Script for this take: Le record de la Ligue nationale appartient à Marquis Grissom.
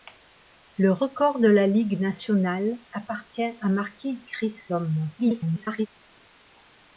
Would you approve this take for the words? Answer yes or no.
no